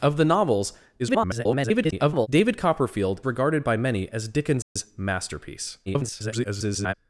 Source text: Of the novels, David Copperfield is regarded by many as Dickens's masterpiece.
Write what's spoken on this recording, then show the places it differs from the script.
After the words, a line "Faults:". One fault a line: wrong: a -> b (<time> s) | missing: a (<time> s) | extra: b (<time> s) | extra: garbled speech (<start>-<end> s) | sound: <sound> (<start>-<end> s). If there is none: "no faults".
Of the novels, [garbled] David Copperfield regarded by many as Dickens's masterpiece. [garbled]
Faults:
extra: garbled speech (1.0-2.3 s)
missing: is (3.2 s)
sound: dropout (4.6-4.8 s)
extra: garbled speech (5.9-6.9 s)